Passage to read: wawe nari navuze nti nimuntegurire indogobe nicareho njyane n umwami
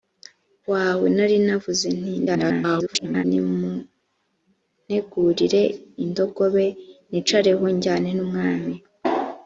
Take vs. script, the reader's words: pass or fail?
fail